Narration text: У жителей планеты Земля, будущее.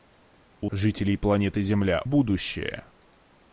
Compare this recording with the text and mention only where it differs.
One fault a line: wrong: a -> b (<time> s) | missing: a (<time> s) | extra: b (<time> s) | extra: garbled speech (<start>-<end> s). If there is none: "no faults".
no faults